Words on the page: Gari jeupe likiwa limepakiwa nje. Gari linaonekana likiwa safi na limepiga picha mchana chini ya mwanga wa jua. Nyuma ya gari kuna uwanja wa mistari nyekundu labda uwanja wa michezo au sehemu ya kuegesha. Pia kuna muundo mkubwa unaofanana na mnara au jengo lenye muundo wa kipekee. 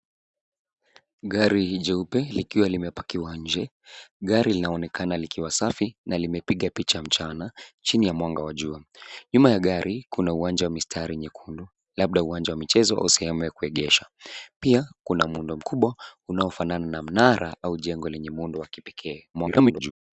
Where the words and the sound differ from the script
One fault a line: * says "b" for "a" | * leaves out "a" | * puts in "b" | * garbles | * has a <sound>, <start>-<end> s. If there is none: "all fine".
* garbles